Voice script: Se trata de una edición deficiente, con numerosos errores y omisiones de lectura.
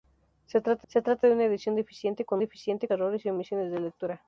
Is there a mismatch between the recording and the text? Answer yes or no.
yes